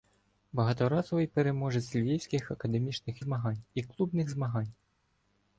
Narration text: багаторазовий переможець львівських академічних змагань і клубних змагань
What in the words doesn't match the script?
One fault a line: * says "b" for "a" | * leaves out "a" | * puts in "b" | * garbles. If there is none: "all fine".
all fine